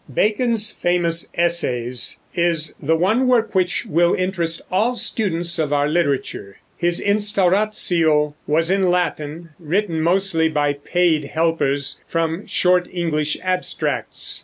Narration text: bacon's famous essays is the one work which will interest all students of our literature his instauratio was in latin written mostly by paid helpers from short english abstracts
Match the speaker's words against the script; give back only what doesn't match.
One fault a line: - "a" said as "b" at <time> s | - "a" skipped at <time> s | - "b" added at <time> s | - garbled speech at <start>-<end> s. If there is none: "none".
none